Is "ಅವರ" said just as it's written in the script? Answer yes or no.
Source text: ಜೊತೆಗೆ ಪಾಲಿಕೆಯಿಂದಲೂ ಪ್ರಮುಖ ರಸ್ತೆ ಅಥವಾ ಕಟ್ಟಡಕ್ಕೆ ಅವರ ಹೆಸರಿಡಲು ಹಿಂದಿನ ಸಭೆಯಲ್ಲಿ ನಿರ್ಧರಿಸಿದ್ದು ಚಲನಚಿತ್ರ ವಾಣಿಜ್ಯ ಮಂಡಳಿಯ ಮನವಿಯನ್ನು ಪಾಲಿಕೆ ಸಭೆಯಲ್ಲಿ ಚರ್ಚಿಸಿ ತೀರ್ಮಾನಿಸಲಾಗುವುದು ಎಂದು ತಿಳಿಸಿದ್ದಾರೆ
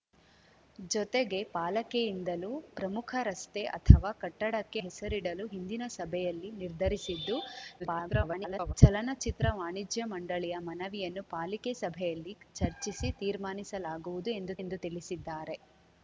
no